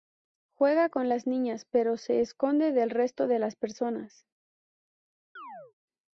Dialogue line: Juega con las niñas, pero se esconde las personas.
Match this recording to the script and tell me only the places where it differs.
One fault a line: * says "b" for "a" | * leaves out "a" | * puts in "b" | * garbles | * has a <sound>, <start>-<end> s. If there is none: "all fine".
* puts in "del resto de"
* has a chirp, 5.4-5.7 s